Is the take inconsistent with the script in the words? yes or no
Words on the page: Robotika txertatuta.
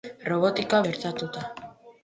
no